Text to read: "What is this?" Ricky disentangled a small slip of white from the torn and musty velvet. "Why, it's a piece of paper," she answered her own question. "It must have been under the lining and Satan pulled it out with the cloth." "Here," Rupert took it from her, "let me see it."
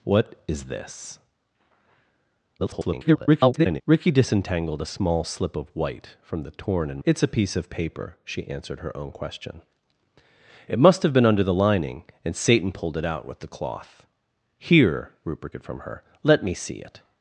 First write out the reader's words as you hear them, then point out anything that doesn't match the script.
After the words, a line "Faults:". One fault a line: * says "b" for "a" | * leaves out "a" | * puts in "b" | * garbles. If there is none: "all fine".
"What is this?" [garbled] Ricky disentangled a small slip of white from the torn and it's a piece of paper," she answered her own question. "It must have been under the lining and Satan pulled it out with the cloth." "Here," Rupert it from her, "let me see it."
Faults:
* garbles
* leaves out "musty velvet Why"
* leaves out "took"